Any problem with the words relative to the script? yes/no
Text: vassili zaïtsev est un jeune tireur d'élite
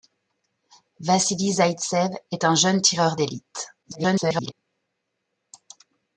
yes